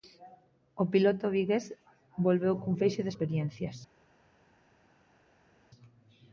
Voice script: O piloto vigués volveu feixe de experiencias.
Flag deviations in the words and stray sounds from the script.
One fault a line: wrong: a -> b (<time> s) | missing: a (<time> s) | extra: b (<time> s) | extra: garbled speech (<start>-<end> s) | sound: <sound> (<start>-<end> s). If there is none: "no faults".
extra: cun (2.6 s)